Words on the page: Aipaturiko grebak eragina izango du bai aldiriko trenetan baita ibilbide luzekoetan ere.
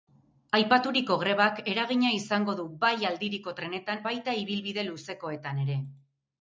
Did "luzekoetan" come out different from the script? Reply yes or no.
no